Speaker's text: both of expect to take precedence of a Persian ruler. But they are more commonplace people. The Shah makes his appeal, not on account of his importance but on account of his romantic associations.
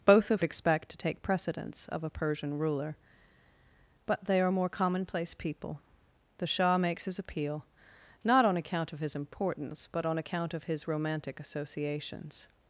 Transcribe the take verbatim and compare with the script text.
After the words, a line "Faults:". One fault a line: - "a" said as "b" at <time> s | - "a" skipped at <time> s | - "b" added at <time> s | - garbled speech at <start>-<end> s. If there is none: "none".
both of expect to take precedence of a Persian ruler. But they are more commonplace people. The Shah makes his appeal, not on account of his importance but on account of his romantic associations.
Faults:
none